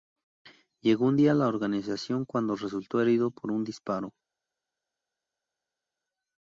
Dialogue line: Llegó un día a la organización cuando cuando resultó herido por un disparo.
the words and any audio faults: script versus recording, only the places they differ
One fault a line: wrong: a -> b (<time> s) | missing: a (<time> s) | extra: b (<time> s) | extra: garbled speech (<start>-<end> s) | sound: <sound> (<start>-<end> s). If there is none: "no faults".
missing: cuando (2.5 s)